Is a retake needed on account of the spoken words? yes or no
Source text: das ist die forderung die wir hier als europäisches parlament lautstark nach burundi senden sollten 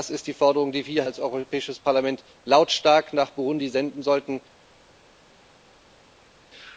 yes